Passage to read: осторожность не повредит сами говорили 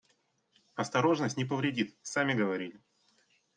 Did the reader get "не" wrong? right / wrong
right